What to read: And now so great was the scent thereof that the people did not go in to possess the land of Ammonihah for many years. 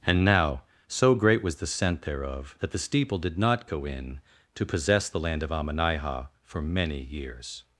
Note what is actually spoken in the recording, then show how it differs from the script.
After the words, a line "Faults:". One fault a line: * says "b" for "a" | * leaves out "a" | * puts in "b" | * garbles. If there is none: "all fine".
And now so great was the scent thereof that the steeple did not go in to possess the land of Ammonihah for many years.
Faults:
* says "steeple" for "people"